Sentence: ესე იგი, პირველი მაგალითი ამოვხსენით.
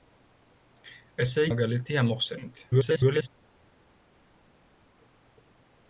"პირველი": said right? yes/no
no